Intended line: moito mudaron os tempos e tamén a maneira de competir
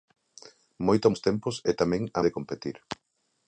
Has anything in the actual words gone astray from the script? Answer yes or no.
yes